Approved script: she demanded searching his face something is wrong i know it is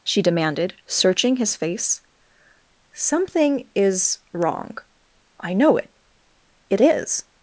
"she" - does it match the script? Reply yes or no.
yes